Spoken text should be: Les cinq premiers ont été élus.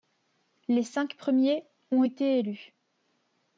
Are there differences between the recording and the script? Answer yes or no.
no